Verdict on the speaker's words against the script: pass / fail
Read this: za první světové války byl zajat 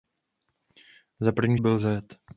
fail